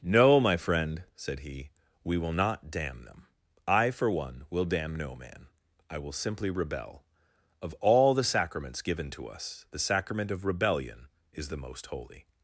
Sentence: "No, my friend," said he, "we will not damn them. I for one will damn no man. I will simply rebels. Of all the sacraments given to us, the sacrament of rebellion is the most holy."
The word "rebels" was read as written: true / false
false